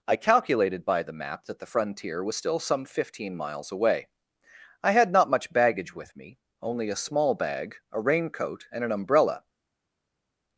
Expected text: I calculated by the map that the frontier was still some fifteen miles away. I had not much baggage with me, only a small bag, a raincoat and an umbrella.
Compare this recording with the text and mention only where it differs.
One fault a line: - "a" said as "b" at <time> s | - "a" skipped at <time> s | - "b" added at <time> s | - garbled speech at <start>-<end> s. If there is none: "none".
none